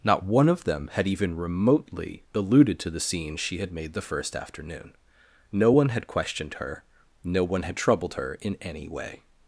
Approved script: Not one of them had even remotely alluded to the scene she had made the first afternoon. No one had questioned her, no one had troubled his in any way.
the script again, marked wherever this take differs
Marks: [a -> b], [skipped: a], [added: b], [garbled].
Not one of them had even remotely alluded to the scene she had made the first afternoon. No one had questioned her, no one had troubled [his -> her] in any way.